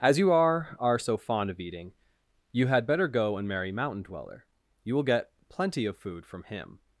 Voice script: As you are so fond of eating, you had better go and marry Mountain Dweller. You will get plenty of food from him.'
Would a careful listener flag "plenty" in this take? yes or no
no